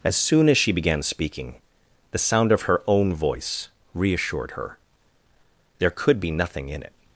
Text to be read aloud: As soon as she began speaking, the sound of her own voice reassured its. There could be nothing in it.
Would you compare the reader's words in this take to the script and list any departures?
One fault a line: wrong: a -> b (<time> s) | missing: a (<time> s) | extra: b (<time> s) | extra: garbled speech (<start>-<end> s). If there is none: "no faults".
wrong: its -> her (4.5 s)